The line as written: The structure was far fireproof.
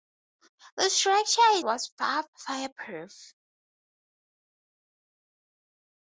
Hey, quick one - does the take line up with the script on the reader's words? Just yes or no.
yes